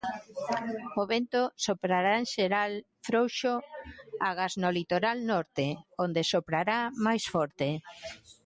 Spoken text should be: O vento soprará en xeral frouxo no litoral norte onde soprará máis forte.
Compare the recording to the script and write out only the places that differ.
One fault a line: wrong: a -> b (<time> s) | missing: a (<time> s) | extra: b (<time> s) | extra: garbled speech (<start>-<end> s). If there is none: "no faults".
extra: agás (4.3 s)